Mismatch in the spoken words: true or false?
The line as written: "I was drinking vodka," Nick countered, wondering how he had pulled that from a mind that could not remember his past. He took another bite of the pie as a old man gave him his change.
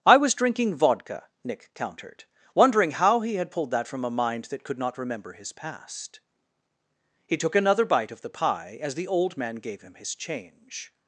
true